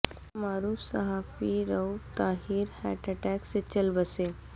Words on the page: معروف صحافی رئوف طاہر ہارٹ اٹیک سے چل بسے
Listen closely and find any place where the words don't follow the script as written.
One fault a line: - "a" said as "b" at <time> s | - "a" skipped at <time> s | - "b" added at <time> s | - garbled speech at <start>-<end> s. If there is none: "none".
none